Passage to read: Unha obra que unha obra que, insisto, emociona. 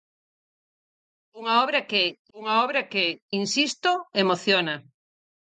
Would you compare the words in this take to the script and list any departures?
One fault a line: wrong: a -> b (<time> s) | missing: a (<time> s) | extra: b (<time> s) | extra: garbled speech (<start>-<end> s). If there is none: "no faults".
no faults